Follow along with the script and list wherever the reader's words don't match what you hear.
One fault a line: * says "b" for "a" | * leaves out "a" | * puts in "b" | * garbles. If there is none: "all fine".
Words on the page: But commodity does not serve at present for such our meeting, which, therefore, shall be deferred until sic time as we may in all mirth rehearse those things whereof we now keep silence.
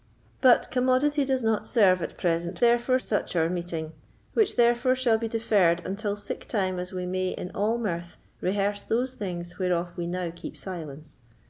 * says "therefore" for "for"